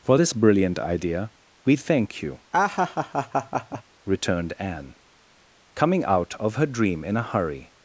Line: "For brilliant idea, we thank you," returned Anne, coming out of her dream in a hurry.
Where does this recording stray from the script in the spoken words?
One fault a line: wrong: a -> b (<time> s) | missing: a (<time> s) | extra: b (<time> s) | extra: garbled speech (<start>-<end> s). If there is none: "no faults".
extra: this (0.2 s)